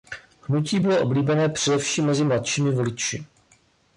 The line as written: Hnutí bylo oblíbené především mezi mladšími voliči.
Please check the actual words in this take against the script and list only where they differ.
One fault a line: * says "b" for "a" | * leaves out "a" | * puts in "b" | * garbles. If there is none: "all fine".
all fine